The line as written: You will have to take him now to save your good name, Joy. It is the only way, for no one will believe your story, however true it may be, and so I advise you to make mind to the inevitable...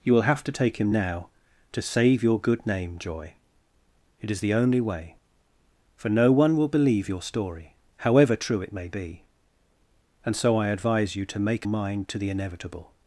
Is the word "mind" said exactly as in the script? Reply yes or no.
yes